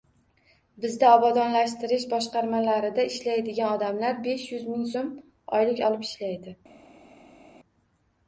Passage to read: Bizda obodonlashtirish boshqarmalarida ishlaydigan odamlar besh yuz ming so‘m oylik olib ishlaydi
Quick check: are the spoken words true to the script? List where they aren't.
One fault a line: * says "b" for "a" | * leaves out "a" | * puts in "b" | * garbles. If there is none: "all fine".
all fine